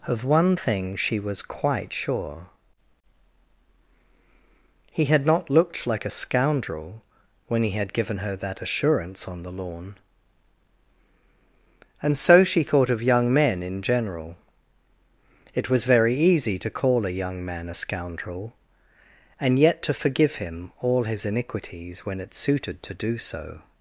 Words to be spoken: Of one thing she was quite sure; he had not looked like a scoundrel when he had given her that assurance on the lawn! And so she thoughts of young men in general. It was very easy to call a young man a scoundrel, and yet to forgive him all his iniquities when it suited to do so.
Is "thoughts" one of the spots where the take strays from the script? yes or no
yes